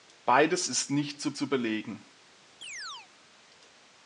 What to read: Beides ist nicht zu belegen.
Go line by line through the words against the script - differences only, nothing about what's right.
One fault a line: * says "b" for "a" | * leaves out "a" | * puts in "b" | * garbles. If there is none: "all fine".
* puts in "zu"